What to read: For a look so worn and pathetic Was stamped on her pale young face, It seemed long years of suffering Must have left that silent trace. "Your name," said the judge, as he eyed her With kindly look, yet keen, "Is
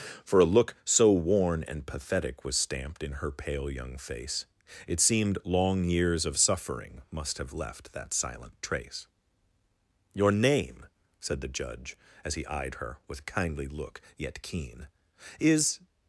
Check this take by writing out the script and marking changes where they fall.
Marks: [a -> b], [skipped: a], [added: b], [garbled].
For a look so worn and pathetic Was stamped [on -> in] her pale young face, It seemed long years of suffering Must have left that silent trace. "Your name," said the judge, as he eyed her With kindly look, yet keen, "Is